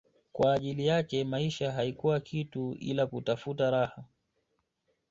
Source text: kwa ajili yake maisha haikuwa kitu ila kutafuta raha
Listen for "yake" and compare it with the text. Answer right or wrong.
right